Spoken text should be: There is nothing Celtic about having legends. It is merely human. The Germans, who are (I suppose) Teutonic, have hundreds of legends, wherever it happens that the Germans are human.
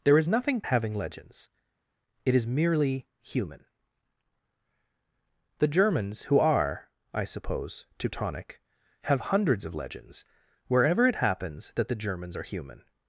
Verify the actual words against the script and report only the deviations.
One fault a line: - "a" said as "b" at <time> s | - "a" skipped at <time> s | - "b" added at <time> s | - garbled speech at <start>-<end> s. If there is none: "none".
- "Celtic about" skipped at 0.6 s